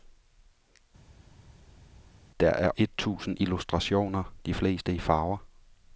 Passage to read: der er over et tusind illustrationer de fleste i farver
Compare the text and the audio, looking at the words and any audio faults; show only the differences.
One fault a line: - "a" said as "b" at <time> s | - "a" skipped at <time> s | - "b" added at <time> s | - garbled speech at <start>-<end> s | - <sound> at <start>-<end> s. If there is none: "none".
- "over" skipped at 2.7 s